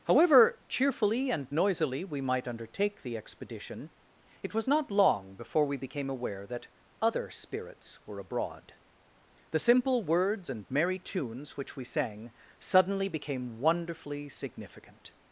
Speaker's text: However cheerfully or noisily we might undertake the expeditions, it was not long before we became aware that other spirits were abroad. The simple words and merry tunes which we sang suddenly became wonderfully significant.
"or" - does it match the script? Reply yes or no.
no